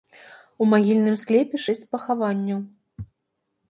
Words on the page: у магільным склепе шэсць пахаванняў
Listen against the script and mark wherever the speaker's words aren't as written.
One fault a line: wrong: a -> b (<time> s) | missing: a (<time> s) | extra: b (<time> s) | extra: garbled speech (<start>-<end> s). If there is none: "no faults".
no faults